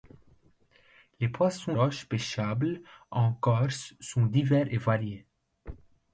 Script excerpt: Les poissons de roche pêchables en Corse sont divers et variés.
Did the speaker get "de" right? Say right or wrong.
wrong